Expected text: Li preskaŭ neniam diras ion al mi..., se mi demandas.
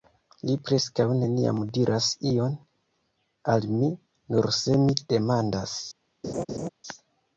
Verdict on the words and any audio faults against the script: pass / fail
fail